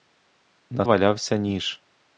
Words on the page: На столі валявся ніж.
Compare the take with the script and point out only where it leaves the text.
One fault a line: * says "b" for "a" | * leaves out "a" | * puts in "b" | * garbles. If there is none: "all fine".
* leaves out "столі"